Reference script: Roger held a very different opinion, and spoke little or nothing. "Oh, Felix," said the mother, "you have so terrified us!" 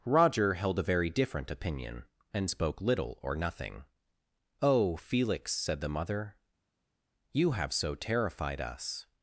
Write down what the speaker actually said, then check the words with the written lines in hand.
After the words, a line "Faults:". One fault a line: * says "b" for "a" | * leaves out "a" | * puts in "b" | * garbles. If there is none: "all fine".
Roger held a very different opinion, and spoke little or nothing. "Oh, Felix," said the mother, "you have so terrified us!"
Faults:
all fine